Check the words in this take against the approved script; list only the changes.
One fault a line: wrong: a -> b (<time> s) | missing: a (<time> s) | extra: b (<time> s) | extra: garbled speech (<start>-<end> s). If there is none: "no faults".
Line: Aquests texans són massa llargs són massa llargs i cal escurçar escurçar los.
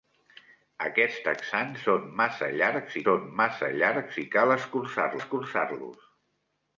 no faults